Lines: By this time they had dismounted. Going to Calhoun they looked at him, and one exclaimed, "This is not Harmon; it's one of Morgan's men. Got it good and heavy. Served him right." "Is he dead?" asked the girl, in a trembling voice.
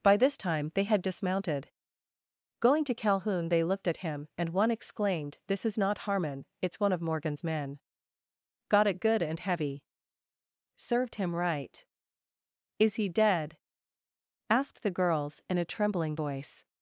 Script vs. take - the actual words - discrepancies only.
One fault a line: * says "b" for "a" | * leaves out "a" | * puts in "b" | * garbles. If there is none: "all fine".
* says "girls" for "girl"